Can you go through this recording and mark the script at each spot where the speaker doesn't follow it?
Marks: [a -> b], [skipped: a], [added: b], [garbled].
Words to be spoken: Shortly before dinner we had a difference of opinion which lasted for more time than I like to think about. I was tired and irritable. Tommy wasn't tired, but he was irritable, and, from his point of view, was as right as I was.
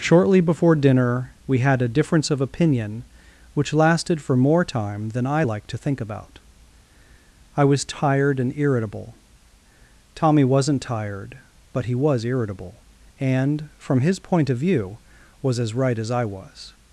Shortly before dinner we had a difference of opinion which lasted for more time than I like to think about. I was tired and irritable. Tommy wasn't tired, but he was irritable, and, from his point of view, was as right as I was.